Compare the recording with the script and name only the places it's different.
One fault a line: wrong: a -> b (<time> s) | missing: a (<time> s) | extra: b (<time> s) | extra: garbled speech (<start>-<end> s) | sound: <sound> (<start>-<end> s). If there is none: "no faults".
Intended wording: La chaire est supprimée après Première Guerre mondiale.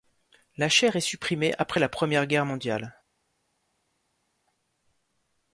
extra: la (1.8 s)